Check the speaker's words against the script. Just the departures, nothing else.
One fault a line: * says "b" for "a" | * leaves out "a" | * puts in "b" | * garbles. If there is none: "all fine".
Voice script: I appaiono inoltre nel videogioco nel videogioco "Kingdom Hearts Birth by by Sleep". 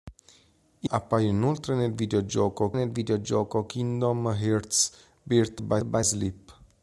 all fine